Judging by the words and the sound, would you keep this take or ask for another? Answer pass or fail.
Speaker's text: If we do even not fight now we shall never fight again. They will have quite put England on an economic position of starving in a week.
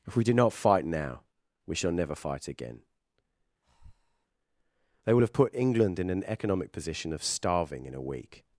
fail